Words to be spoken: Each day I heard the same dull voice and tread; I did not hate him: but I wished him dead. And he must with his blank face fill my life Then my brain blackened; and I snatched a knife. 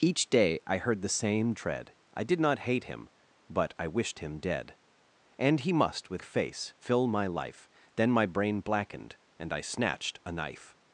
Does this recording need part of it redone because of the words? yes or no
yes